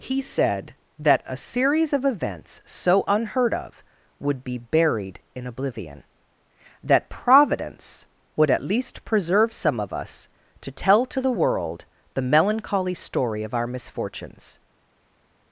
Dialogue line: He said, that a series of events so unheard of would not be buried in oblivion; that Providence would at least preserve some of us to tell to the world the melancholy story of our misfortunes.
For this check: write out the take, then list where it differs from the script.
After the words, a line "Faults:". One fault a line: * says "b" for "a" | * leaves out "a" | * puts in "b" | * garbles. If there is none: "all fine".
He said, that a series of events so unheard of would be buried in oblivion; that Providence would at least preserve some of us to tell to the world the melancholy story of our misfortunes.
Faults:
* leaves out "not"